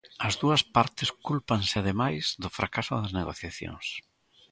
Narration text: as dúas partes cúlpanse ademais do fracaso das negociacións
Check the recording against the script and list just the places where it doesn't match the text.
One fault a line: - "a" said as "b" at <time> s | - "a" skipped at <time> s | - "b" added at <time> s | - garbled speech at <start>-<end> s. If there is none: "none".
none